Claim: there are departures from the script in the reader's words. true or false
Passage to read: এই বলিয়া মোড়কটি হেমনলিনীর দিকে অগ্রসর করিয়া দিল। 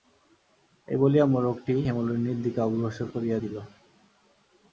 false